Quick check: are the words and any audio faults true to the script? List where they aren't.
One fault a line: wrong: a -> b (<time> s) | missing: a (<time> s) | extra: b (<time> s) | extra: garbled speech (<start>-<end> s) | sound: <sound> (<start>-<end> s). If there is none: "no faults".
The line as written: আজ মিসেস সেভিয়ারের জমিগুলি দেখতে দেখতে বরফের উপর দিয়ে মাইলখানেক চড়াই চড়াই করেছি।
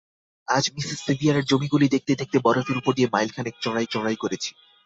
no faults